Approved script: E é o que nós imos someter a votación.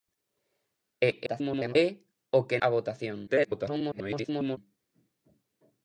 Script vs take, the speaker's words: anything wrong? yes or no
yes